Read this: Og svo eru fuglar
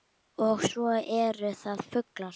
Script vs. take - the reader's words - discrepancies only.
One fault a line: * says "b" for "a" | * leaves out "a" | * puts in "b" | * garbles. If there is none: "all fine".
* puts in "það"